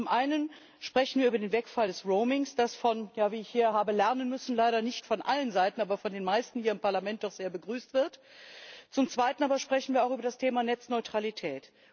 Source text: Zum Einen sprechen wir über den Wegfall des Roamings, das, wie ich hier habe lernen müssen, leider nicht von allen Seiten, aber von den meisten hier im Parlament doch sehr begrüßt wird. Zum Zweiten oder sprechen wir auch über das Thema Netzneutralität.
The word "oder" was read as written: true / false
false